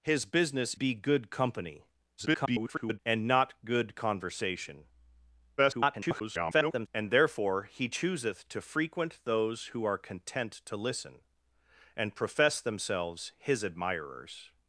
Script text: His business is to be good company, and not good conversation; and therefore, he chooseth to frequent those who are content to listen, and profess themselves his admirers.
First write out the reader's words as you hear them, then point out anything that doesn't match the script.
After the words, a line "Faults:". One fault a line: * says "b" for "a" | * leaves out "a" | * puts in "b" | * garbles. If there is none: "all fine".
His business be good company, [garbled] and not good conversation; [garbled] and therefore, he chooseth to frequent those who are content to listen, and profess themselves his admirers.
Faults:
* leaves out "is to"
* garbles
* garbles